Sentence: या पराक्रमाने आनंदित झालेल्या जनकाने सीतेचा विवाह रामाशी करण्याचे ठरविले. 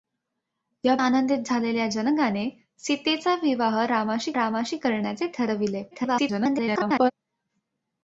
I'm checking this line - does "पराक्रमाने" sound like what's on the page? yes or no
no